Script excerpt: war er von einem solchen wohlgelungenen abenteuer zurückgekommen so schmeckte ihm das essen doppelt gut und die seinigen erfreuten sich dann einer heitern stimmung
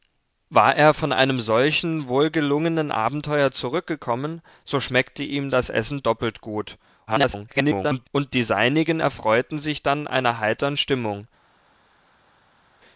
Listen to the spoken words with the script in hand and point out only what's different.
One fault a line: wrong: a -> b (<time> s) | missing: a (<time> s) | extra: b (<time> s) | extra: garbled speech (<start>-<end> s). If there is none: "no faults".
extra: garbled speech (7.1-8.1 s)